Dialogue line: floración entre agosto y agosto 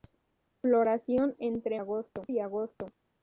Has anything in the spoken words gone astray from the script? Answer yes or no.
no